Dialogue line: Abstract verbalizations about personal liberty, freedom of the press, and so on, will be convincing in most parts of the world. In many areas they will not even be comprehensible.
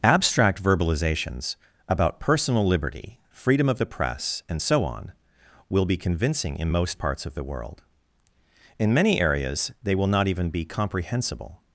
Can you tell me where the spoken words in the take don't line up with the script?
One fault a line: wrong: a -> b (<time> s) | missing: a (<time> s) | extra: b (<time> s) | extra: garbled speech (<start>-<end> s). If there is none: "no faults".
no faults